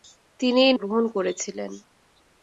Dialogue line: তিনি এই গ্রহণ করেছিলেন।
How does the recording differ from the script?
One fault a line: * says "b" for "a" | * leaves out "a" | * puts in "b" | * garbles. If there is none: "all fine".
all fine